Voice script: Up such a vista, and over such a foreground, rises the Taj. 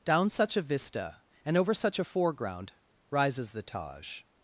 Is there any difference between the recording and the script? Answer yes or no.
yes